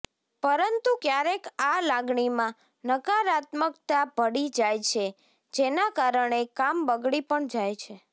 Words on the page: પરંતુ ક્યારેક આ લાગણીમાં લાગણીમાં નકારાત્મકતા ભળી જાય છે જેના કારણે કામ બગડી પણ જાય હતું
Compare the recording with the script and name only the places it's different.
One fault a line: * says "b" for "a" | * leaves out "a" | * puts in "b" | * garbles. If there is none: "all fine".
* leaves out "લાગણીમાં"
* says "છે" for "હતું"